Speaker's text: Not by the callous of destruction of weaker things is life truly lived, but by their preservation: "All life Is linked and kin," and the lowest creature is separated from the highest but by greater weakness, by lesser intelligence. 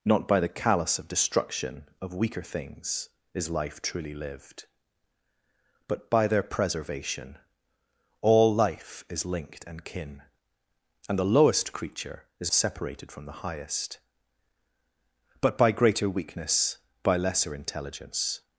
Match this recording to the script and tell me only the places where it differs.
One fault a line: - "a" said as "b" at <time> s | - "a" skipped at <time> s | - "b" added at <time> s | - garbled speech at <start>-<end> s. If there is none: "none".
none